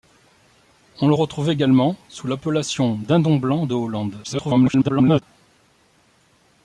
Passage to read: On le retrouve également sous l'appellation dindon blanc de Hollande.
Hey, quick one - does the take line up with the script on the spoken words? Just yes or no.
no